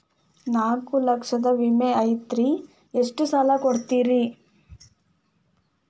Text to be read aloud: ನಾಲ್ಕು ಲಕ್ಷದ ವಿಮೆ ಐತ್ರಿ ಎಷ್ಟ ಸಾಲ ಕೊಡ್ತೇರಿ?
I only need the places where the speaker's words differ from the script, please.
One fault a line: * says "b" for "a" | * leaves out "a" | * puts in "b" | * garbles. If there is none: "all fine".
all fine